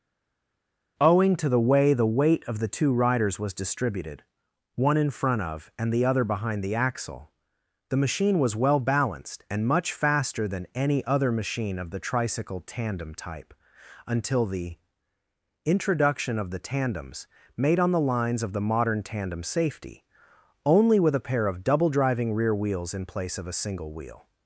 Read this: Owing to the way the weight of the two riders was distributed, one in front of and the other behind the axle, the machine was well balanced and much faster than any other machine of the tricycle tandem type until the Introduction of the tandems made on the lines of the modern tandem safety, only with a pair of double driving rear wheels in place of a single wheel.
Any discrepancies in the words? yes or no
no